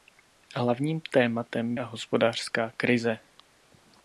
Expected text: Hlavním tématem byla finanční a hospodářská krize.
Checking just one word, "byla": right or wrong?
wrong